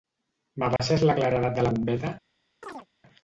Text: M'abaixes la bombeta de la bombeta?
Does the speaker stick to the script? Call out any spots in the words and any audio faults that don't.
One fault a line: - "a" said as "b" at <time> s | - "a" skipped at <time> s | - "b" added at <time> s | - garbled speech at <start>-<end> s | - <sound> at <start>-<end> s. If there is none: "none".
- dropout at 0.8-0.8 s
- "bombeta" said as "claredat" at 1.2 s
- chirp at 2.6-2.9 s